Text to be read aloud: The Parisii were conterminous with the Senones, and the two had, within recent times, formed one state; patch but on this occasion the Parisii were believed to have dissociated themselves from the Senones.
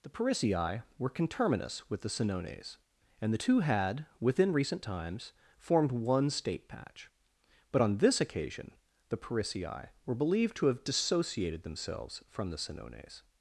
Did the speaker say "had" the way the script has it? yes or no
yes